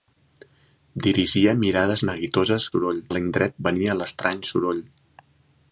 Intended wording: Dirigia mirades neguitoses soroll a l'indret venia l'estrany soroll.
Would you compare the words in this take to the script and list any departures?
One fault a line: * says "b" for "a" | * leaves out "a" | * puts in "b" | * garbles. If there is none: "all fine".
all fine